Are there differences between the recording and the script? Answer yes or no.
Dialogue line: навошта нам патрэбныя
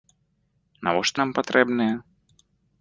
no